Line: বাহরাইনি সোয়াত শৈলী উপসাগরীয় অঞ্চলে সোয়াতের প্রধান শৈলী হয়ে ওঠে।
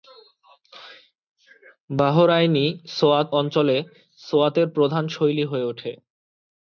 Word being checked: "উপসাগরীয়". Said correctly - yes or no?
no